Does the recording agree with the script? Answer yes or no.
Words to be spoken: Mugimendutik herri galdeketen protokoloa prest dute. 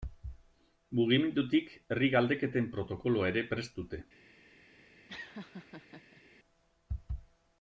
no